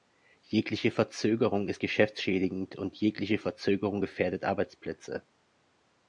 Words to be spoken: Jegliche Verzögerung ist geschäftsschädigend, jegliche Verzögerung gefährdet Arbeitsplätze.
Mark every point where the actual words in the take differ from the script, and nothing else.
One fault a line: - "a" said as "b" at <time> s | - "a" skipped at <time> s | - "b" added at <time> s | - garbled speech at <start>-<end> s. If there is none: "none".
- "und" added at 2.8 s